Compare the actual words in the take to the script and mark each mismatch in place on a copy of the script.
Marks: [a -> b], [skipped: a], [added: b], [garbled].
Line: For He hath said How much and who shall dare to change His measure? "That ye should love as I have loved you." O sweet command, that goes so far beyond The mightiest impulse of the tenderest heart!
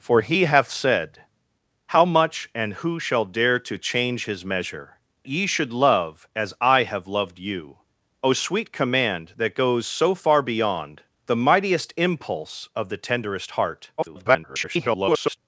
For He hath said How much and who shall dare to change His measure? [skipped: "That] ye should love as I have loved you." O sweet command, that goes so far beyond The mightiest impulse of the tenderest heart! [garbled]